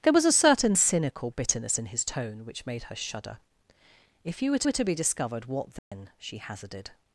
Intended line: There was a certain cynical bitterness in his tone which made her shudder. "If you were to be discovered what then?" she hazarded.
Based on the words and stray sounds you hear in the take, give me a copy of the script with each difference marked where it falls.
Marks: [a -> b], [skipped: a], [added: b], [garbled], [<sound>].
There was a certain cynical bitterness in his tone which made her shudder. "If you were [added: were] to be discovered what then?" [dropout] she hazarded.